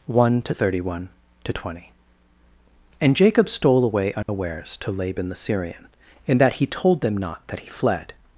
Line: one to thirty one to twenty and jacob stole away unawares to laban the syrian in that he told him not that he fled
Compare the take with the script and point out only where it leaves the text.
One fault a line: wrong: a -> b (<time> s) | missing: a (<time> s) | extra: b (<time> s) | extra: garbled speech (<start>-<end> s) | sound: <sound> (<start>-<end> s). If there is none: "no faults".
sound: dropout (4.2-4.3 s)
wrong: him -> them (7.0 s)